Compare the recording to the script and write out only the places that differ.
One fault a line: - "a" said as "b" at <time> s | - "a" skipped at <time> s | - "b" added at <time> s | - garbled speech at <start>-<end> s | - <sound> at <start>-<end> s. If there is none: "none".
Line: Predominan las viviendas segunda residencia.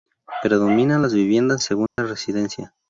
- dropout at 1.9-2.0 s